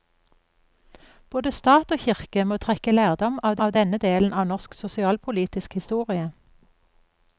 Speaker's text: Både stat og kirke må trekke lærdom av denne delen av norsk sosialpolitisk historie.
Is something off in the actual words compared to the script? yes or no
yes